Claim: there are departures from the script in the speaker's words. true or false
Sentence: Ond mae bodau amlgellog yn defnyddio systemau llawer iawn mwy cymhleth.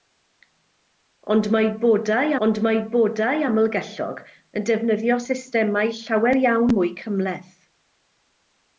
true